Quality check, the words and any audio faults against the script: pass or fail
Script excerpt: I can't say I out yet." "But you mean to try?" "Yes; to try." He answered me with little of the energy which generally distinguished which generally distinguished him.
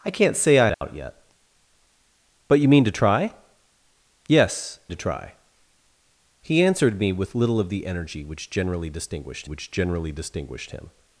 fail